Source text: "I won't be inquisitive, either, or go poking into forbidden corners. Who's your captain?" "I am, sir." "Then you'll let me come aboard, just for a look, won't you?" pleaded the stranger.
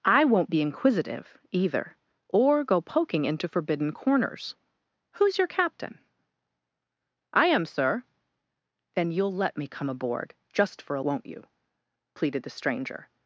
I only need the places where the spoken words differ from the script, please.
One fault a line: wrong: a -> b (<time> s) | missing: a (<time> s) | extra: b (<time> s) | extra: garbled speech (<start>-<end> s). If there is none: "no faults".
missing: look (11.0 s)